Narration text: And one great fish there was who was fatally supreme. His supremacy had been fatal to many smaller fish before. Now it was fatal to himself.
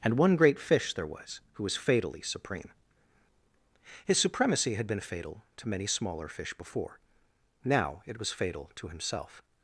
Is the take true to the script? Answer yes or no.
yes